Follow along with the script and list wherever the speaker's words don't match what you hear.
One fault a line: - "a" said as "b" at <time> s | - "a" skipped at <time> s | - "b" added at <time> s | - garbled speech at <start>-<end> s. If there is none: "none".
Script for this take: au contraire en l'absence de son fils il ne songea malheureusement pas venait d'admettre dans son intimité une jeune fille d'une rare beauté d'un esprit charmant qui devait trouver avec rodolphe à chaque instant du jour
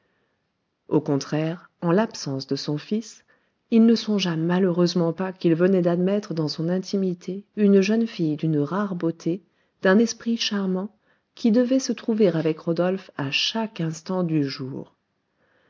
- "qu'il" added at 5.3 s
- "se" added at 11.8 s